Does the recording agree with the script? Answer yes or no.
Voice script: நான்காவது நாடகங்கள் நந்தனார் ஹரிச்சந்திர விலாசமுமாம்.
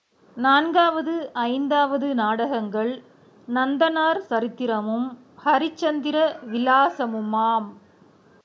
no